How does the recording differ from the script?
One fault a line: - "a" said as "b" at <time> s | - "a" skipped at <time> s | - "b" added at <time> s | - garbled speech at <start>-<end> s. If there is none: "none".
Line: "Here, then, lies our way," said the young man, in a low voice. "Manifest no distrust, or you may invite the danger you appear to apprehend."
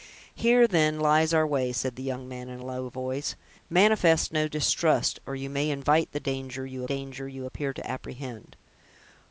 - "danger you" added at 6.8 s